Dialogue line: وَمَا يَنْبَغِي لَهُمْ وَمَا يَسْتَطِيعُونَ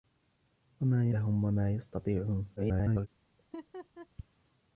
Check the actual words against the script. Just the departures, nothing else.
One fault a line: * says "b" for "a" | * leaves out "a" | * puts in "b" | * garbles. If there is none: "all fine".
* leaves out "يَنْبَغِي"
* garbles